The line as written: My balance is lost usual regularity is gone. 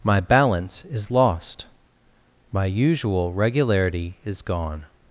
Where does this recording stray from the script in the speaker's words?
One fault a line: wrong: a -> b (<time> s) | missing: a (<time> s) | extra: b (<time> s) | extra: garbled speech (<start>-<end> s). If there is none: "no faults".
extra: my (2.5 s)